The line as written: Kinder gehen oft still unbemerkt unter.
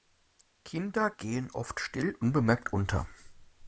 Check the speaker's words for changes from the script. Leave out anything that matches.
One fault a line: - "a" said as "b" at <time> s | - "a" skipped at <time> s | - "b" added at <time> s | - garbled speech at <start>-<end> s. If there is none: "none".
none